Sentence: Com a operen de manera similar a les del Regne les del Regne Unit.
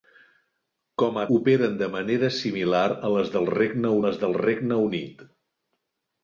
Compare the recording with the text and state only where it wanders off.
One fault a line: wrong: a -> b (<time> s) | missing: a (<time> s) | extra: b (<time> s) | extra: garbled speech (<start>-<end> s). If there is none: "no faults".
no faults